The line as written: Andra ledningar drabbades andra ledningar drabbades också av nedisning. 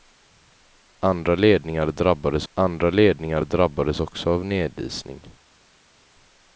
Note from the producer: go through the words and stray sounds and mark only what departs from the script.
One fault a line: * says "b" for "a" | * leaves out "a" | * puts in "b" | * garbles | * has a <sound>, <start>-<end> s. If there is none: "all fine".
all fine